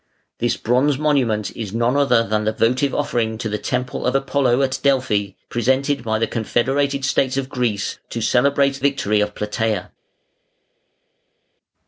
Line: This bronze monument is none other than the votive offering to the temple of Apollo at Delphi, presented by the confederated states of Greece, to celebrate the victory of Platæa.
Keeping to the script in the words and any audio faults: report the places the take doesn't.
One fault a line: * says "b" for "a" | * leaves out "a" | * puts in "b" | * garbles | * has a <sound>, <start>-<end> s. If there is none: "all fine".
* leaves out "the"